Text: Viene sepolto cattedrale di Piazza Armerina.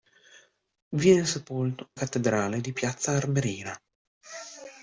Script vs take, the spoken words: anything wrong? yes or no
no